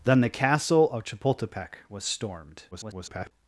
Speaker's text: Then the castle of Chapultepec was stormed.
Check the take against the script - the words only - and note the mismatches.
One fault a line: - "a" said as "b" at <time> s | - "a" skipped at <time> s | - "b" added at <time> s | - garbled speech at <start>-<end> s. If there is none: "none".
- garbled speech at 2.7-3.3 s